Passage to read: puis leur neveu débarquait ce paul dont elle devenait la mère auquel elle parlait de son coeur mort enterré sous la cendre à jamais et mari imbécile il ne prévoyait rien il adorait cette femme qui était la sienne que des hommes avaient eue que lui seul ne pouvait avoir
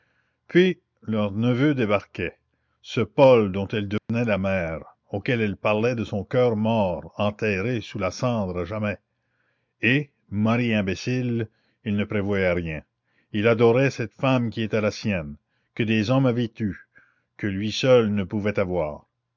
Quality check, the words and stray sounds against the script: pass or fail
fail